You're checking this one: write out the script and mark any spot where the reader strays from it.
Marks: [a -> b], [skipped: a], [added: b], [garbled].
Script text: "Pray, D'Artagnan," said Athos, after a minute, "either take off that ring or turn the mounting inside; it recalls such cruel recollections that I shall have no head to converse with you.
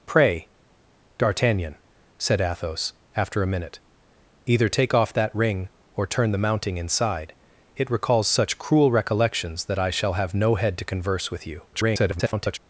"Pray, D'Artagnan," said Athos, after a minute, "either take off that ring or turn the mounting inside; it recalls such cruel recollections that I shall have no head to converse with you. [garbled]